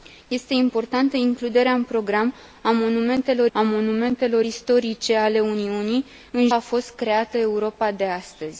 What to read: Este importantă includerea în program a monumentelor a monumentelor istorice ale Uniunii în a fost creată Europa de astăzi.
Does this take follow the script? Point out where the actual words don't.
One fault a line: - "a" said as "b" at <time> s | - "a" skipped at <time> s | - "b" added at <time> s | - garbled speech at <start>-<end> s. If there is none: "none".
none